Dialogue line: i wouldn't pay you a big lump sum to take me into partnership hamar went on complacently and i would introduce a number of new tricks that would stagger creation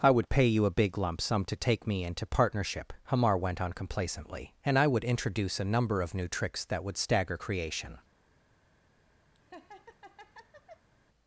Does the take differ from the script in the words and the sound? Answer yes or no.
yes